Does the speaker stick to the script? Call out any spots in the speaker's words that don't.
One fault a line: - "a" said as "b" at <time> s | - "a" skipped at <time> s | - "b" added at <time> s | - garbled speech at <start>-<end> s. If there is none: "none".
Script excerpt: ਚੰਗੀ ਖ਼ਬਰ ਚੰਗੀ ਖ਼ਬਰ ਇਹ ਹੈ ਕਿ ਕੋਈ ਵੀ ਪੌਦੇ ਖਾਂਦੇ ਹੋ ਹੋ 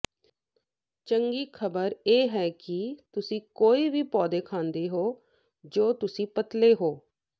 - "ਚੰਗੀ ਖ਼ਬਰ" skipped at 1.9 s
- "ਤੁਸੀਂ" added at 3.1 s
- "ਜੋ ਤੁਸੀਂ ਪਤਲੇ" added at 5.6 s